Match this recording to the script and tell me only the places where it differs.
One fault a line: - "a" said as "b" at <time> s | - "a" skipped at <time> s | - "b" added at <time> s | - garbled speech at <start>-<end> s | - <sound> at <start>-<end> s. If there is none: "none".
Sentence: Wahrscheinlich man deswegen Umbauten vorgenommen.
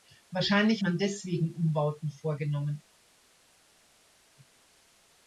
none